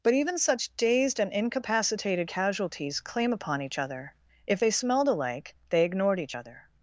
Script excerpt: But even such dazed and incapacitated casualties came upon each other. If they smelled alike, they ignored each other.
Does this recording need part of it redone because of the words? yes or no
yes